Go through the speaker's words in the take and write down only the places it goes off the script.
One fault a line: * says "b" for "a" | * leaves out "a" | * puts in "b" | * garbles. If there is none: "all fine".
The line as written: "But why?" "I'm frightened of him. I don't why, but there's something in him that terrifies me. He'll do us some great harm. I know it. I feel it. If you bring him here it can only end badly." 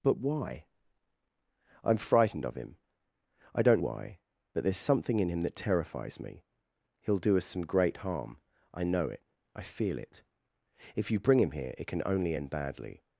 all fine